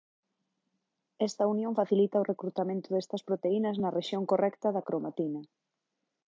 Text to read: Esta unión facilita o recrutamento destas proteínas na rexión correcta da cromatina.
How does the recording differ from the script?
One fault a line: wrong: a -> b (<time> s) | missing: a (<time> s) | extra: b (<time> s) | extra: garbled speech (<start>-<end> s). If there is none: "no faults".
no faults